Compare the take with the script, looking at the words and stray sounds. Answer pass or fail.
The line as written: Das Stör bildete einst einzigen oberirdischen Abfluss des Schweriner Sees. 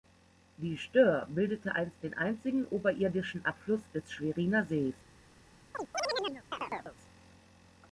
fail